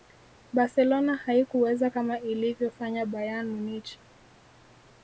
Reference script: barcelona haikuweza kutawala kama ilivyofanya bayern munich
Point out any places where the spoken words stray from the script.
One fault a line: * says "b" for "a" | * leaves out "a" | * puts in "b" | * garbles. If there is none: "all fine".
* leaves out "kutawala"